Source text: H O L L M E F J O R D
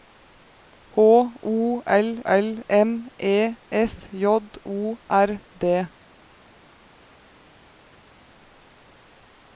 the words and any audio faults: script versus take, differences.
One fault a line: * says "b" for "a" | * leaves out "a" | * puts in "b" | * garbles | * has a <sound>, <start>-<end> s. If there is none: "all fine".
all fine